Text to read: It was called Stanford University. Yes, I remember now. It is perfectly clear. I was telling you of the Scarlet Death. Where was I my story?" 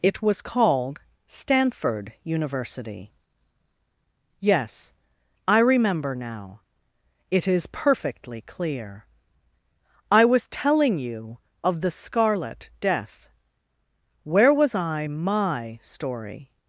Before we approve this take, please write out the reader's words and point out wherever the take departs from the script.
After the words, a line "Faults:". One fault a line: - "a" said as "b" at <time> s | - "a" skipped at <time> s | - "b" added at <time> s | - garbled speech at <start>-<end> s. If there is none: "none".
It was called Stanford University. Yes, I remember now. It is perfectly clear. I was telling you of the Scarlet Death. Where was I my story?"
Faults:
none